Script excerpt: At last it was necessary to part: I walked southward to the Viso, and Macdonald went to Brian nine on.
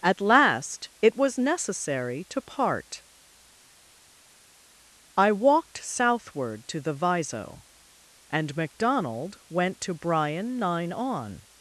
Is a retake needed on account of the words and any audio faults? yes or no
no